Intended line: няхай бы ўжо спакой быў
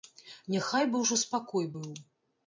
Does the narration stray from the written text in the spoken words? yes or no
no